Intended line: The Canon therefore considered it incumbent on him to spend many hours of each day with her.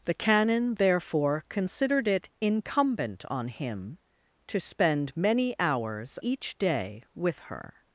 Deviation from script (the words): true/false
true